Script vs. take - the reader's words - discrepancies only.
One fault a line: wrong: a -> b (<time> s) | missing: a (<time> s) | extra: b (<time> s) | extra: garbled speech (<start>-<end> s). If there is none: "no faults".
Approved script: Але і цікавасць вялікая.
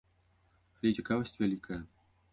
no faults